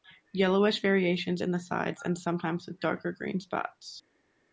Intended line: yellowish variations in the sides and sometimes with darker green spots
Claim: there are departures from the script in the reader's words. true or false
false